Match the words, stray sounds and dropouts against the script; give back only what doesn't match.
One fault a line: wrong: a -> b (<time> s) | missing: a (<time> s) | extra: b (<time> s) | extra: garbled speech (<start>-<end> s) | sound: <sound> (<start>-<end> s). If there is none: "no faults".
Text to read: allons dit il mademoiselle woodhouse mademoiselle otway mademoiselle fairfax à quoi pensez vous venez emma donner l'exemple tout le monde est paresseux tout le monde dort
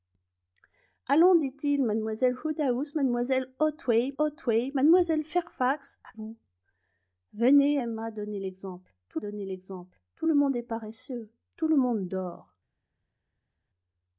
extra: otway (4.2 s)
missing: quoi pensez (6.1 s)
extra: donner l'exemple tout (9.2 s)